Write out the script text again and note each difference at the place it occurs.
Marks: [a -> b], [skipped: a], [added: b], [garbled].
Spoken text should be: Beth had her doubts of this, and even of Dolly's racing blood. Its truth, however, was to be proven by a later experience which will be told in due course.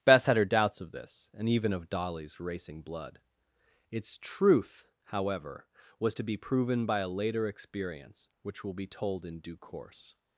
Beth had her doubts of this, and even of Dolly's racing blood. Its truth, however, was to be proven by a later experience which will be told in due course.